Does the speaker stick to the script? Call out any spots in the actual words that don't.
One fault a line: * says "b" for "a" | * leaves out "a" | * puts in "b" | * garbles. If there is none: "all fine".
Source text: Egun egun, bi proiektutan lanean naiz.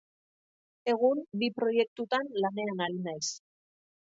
* leaves out "egun"
* puts in "ari"